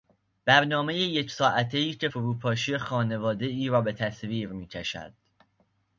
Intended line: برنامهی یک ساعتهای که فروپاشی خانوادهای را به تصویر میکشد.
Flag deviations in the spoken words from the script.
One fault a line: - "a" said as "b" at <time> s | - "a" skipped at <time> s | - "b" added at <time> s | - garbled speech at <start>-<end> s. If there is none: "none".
none